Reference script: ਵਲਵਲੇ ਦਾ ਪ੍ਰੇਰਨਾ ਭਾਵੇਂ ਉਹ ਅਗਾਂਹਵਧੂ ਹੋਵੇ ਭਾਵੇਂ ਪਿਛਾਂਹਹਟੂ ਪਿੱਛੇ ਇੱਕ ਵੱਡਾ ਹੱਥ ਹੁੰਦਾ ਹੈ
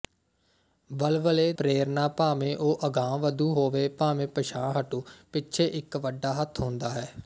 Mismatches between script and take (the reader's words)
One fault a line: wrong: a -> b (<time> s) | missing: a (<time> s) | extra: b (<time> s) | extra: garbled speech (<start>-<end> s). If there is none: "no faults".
missing: ਦਾ (1.5 s)